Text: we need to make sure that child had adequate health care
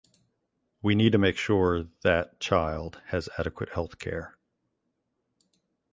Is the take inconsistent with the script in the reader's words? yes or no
yes